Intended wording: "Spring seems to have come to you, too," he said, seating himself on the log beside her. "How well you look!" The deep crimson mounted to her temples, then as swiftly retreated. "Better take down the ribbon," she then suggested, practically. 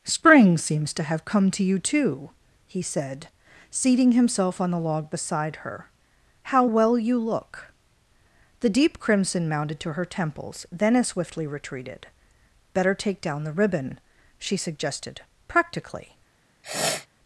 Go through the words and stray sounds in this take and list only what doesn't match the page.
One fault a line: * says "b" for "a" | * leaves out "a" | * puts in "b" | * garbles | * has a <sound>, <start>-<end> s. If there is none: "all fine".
* leaves out "then"
* has a sniff, 16.6-17.1 s